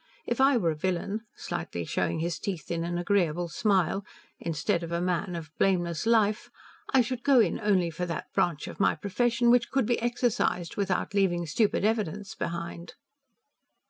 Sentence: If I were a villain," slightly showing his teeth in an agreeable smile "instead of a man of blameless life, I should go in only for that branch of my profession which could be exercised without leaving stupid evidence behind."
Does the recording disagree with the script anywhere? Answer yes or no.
no